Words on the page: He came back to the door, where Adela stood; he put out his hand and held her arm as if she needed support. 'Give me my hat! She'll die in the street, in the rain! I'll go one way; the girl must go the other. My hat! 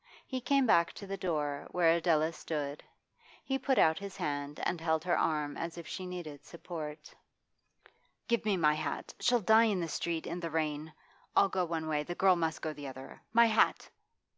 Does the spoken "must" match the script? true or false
true